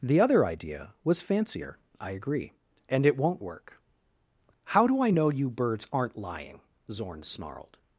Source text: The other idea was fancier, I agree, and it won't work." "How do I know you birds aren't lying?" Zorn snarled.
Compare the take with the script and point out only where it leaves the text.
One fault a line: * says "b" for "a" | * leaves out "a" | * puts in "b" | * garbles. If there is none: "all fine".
all fine